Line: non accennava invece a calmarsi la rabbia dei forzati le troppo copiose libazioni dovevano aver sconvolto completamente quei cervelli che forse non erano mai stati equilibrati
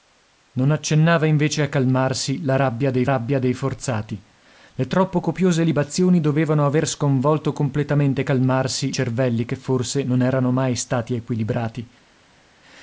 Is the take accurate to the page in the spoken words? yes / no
no